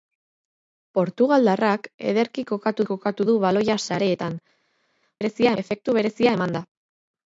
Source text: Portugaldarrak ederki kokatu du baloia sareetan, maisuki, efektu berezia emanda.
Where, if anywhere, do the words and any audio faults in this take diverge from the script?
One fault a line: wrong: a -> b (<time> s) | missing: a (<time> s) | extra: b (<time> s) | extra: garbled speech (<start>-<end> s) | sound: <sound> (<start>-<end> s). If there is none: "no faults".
extra: kokatu (2.9 s)
wrong: maisuki -> berezia (5.2 s)